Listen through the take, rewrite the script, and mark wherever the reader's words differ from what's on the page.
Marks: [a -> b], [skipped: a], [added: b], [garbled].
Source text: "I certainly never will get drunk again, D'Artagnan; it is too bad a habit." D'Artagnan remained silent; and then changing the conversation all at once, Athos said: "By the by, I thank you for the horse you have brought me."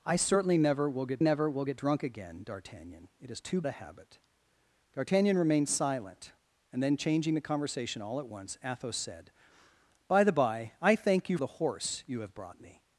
"I certainly never will get [added: never will get] drunk again, D'Artagnan; it is too [skipped: bad] a habit." D'Artagnan remained silent; and then changing the conversation all at once, Athos said: "By the by, I thank you [skipped: for] the horse you have brought me."